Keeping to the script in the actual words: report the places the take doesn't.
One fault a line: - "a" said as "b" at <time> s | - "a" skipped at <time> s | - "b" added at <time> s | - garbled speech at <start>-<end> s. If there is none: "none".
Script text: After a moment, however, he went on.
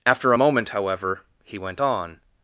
none